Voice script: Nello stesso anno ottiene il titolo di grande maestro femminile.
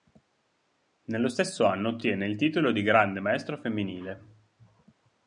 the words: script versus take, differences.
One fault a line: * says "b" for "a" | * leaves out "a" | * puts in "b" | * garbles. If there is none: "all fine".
all fine